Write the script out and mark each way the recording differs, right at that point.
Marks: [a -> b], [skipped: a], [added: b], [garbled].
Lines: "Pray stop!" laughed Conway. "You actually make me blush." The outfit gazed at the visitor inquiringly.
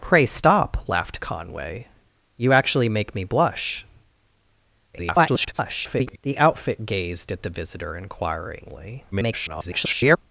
"Pray stop!" laughed Conway. "You actually make me blush." [garbled] The outfit gazed at the visitor inquiringly. [garbled]